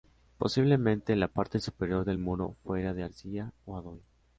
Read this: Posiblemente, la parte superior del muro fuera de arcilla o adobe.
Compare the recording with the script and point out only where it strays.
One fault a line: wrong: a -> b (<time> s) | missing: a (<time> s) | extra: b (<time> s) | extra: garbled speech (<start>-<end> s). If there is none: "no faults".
no faults